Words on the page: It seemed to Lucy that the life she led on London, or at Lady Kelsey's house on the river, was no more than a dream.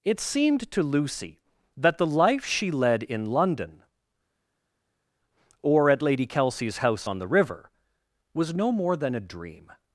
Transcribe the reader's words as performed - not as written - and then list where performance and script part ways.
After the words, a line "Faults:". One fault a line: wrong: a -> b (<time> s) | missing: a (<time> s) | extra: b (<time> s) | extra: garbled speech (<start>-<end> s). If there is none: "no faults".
It seemed to Lucy that the life she led in London, or at Lady Kelsey's house on the river, was no more than a dream.
Faults:
wrong: on -> in (3.0 s)